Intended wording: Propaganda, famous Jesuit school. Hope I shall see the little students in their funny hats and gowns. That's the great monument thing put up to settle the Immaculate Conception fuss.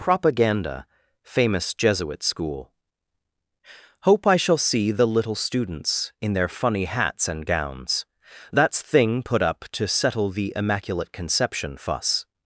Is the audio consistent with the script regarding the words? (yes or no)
no